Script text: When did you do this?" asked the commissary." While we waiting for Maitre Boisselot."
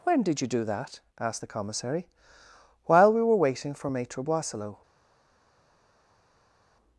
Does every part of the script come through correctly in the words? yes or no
no